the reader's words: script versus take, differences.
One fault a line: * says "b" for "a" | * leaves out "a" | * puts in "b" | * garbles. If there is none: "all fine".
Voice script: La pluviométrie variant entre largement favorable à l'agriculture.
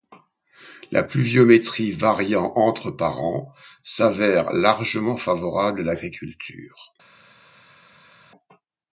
* puts in "par an s'avère"